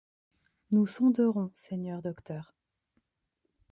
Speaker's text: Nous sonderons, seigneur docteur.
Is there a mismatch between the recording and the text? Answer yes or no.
no